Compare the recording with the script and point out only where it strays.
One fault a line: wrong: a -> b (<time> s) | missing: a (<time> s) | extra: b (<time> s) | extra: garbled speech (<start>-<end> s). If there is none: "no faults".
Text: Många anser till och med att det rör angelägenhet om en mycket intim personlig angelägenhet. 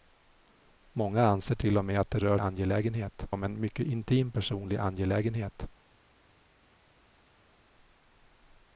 no faults